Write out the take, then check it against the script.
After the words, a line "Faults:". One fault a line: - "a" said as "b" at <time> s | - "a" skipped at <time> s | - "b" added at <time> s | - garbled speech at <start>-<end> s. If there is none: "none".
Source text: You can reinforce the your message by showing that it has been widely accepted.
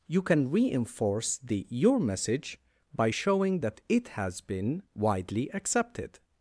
You can reinforce the your message by showing that it has been widely accepted.
Faults:
none